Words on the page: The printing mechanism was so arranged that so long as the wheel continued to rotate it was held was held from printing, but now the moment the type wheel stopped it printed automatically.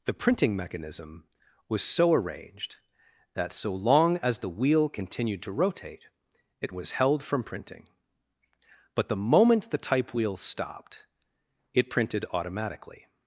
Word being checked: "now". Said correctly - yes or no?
no